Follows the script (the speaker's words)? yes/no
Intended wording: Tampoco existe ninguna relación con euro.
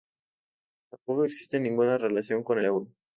yes